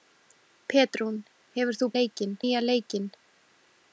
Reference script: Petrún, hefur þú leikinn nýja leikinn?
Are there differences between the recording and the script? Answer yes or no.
no